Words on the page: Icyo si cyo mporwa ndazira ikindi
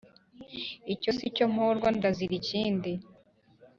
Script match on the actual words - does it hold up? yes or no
yes